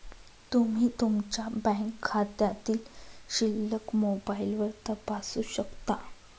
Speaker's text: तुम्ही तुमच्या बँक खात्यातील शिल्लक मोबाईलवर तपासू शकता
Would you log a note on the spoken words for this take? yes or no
no